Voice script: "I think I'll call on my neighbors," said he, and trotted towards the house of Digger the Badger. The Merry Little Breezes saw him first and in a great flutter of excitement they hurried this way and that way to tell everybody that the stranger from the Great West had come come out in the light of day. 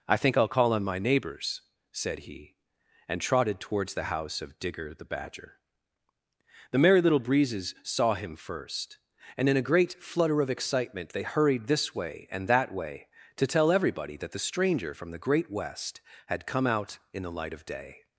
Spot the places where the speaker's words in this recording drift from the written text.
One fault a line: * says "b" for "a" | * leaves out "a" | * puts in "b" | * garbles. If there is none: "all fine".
* leaves out "come"